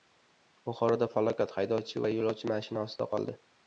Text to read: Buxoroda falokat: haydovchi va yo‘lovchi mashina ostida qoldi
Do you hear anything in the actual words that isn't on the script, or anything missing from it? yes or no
no